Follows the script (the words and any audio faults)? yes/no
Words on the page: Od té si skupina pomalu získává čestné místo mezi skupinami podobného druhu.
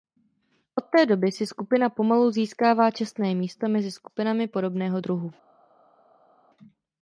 no